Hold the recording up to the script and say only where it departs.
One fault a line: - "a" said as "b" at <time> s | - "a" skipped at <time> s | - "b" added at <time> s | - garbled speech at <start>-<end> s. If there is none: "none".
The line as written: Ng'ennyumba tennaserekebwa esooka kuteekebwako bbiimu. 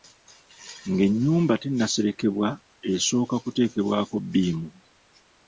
none